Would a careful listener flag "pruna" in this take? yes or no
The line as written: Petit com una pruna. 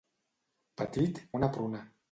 no